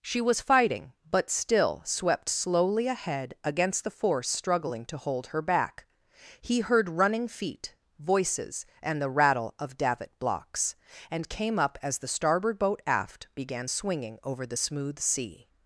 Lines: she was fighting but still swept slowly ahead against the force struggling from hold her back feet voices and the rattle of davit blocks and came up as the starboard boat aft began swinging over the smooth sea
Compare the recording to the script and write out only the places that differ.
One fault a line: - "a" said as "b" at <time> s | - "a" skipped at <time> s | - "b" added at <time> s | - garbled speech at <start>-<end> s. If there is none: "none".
- "from" said as "to" at 4.8 s
- "he heard running" added at 6.4 s